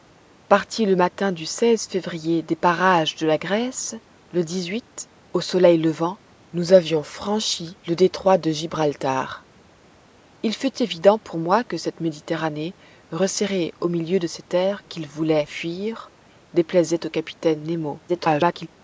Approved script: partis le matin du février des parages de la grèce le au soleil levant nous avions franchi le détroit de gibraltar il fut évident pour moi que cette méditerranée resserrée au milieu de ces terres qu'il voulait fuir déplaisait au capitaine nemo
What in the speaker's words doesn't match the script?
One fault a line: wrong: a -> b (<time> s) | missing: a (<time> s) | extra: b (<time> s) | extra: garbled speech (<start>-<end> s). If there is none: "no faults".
extra: garbled speech (18.1-18.7 s)